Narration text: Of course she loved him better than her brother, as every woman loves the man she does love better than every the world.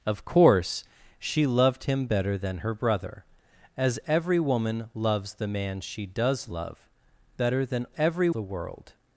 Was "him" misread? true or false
false